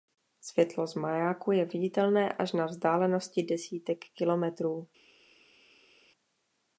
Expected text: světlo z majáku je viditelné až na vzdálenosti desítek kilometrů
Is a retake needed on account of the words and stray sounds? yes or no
no